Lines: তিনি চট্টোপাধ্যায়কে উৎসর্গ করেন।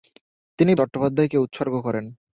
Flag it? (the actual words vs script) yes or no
no